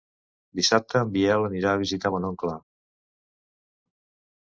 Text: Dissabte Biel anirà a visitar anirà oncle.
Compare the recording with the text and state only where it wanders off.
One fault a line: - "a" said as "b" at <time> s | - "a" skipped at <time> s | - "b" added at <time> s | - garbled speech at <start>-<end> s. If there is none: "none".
- "en" added at 1.0 s
- "anirà" said as "mon" at 2.2 s